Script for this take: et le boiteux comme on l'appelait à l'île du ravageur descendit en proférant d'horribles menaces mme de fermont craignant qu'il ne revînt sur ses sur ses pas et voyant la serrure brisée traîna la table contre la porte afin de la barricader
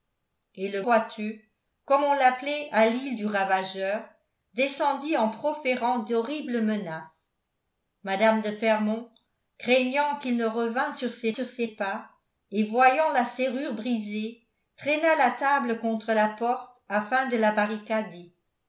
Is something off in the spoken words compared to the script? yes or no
no